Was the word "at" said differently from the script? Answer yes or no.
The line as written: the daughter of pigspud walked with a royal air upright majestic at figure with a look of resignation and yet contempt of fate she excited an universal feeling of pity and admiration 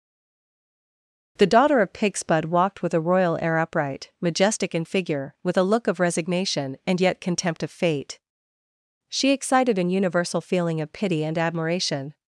yes